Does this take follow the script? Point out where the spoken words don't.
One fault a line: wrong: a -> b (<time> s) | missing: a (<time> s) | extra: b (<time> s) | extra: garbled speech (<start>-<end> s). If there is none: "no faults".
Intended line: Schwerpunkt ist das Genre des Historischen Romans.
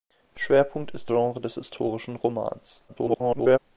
missing: das (1.1 s)
extra: garbled speech (2.9-3.6 s)